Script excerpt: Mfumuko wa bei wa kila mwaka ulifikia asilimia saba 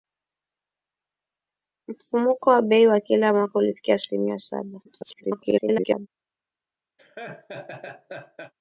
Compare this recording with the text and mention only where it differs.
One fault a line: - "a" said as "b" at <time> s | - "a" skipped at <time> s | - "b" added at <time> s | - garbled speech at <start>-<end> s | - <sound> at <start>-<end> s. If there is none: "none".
- garbled speech at 4.8-6.1 s
- laugh at 7.0-8.5 s